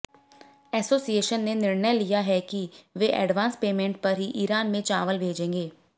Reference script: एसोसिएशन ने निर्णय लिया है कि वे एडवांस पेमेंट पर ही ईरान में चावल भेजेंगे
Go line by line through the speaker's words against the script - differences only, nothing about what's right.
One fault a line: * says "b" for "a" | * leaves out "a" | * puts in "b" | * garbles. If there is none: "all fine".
all fine